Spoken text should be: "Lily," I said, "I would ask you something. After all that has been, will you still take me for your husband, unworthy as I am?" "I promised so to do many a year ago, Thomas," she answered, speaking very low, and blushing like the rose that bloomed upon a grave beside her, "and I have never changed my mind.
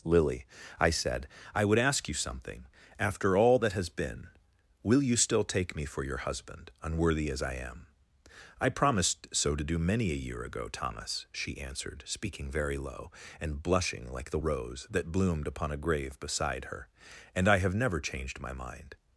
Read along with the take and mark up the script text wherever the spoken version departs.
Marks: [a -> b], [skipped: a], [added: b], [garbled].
"Lily," I said, "I would ask you something. After all that has been, will you still take me for your husband, unworthy as I am?" "I promised so to do many a year ago, Thomas," she answered, speaking very low, and blushing like the rose that bloomed upon a grave beside her, "and I have never changed my mind.